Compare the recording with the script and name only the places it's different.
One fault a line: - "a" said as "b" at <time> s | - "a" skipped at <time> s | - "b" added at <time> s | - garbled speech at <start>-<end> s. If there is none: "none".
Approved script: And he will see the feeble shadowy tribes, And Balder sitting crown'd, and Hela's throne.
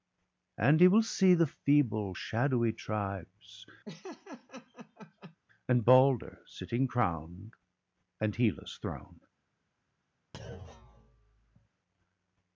none